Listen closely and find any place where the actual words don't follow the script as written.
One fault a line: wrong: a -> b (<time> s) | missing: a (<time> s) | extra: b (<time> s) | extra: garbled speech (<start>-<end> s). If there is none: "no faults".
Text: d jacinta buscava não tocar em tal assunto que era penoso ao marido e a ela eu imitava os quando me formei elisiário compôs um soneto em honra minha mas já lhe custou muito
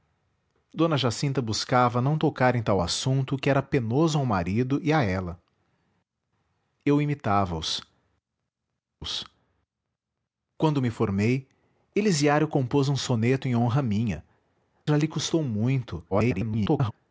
extra: os (9.0 s)
missing: mas (14.2 s)
extra: garbled speech (16.1-16.9 s)